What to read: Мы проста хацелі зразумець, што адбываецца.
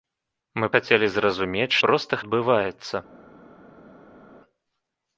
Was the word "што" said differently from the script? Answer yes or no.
yes